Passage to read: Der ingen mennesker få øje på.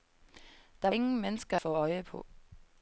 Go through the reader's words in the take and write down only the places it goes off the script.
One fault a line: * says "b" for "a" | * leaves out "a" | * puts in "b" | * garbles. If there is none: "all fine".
all fine